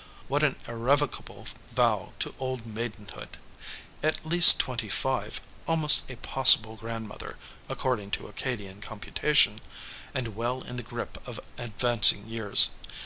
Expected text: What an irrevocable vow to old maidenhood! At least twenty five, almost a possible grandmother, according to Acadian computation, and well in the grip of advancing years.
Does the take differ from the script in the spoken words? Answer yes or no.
no